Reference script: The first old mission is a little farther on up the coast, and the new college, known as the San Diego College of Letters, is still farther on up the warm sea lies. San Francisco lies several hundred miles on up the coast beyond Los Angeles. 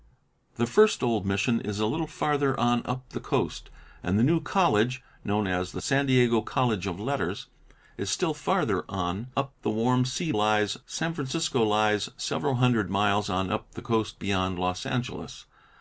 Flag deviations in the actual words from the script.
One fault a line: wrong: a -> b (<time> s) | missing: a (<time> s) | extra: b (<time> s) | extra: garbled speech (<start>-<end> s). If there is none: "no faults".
no faults